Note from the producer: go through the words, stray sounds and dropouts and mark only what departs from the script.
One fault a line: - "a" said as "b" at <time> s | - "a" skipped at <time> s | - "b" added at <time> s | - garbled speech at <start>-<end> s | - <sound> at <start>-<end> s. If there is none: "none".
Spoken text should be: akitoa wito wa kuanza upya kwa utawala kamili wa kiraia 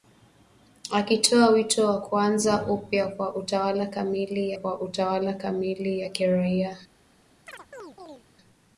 - "kwa utawala kamili" added at 4.5 s
- chirp at 7.5-8.2 s